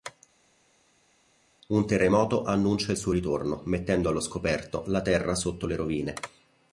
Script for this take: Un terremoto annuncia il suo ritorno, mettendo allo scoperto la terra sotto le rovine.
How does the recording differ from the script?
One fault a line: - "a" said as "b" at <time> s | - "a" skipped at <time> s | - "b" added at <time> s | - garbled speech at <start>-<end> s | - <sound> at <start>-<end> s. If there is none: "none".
none